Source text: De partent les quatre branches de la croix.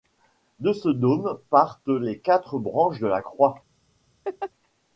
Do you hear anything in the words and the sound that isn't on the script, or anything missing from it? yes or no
yes